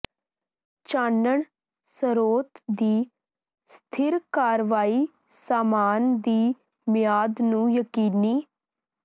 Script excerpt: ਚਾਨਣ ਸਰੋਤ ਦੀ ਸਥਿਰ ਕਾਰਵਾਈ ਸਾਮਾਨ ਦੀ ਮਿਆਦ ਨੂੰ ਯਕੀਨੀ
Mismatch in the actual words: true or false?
false